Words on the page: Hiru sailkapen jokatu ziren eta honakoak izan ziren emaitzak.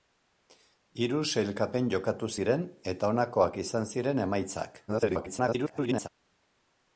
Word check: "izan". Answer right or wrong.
right